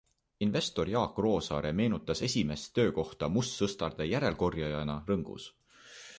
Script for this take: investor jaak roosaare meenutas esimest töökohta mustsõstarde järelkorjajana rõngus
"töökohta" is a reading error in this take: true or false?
false